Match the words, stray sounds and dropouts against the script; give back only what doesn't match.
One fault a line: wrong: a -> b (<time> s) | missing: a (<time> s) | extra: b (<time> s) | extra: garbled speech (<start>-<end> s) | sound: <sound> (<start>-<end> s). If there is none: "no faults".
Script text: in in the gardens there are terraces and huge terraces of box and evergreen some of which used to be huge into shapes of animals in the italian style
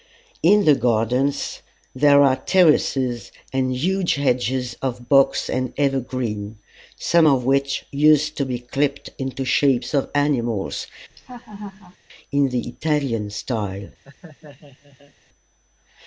missing: in (0.7 s)
wrong: terraces -> hedges (4.2 s)
wrong: huge -> clipped (8.6 s)
sound: laugh (11.1-12.0 s)
sound: laugh (14.0-15.1 s)